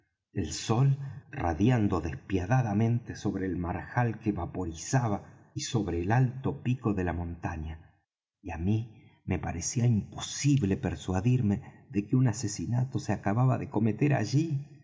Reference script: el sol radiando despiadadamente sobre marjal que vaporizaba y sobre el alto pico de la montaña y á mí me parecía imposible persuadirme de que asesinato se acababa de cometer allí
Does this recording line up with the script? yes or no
no